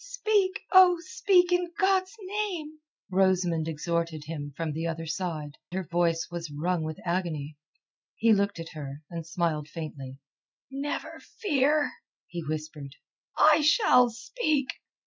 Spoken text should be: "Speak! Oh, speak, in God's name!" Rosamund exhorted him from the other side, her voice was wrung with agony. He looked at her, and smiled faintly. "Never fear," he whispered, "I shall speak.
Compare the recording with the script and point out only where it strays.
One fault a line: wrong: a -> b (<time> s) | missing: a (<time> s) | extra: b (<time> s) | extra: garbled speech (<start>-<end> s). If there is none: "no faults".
no faults